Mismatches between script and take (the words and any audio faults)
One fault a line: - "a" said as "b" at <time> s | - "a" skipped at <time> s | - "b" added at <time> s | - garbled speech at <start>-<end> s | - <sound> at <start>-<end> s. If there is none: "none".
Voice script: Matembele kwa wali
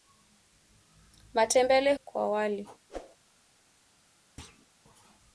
- whoosh at 2.9-3.2 s
- thud at 4.4-4.7 s